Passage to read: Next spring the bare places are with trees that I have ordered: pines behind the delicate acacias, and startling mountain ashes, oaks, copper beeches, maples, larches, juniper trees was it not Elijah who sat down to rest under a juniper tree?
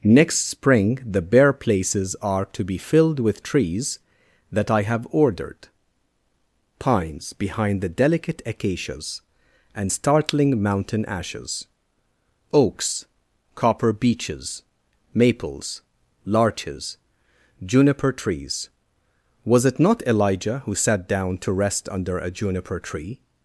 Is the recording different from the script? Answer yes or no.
yes